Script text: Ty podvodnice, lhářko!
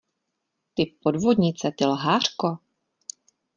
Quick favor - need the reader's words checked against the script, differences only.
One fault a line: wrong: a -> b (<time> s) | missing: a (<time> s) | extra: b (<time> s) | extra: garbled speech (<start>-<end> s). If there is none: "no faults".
extra: ty (1.7 s)